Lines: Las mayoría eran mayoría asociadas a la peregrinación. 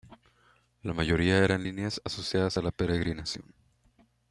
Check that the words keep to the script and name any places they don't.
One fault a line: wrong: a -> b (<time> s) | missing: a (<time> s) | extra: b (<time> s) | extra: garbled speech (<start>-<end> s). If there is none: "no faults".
wrong: Las -> La (0.8 s)
wrong: mayoría -> líneas (1.6 s)